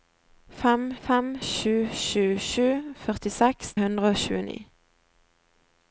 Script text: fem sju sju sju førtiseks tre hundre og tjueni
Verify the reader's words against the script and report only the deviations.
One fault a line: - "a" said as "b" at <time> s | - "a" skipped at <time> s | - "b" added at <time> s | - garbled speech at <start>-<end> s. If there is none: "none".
- "fem" added at 1.0 s
- "tre" skipped at 3.7 s